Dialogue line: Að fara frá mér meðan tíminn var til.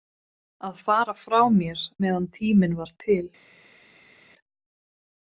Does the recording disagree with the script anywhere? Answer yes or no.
no